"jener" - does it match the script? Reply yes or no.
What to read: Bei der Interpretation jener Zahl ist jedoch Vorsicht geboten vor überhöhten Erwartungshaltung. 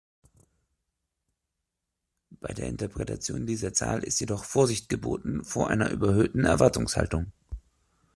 no